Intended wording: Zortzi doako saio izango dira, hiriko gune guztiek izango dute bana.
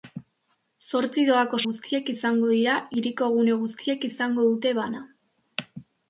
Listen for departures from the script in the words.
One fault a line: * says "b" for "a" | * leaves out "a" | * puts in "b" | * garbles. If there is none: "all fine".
* says "guztiek" for "saio"